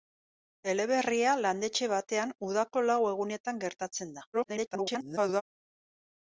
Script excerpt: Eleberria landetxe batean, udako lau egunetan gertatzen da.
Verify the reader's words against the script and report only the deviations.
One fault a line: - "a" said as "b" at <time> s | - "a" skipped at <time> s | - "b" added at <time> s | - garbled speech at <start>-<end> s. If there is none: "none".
- garbled speech at 4.3-5.4 s